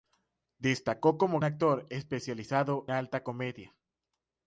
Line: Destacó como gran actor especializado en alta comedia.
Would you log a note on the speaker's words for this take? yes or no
yes